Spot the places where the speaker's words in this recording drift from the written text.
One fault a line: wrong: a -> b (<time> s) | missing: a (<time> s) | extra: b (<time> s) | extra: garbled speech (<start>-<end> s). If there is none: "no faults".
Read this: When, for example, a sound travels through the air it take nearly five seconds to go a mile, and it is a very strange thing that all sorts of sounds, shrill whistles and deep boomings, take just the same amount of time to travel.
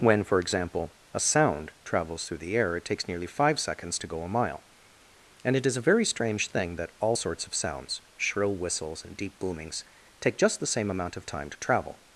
wrong: take -> takes (2.9 s)